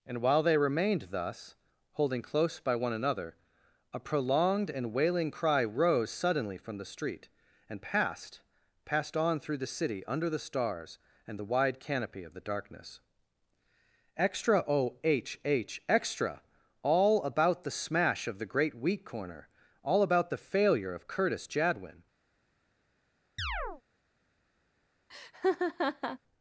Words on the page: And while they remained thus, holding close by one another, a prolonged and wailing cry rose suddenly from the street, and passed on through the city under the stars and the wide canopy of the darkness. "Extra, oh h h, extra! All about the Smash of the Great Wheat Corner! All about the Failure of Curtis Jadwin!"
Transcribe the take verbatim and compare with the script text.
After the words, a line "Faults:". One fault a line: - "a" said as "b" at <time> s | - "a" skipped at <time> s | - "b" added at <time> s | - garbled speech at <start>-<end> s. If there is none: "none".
And while they remained thus, holding close by one another, a prolonged and wailing cry rose suddenly from the street, and passed passed on through the city under the stars and the wide canopy of the darkness. "Extra, oh h h, extra! All about the Smash of the Great Wheat Corner! All about the Failure of Curtis Jadwin!"
Faults:
- "passed" added at 8.8 s